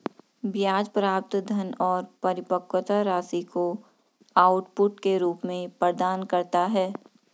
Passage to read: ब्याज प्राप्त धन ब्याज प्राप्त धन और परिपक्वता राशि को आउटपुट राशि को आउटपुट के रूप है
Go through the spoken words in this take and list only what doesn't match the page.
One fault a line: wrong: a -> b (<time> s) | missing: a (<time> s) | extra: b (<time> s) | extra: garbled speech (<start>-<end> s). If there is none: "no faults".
missing: ब्याज प्राप्त धन (1.7 s)
wrong: राशि को आउटपुट के रूप -> के रूप में प्रदान करता (5.0 s)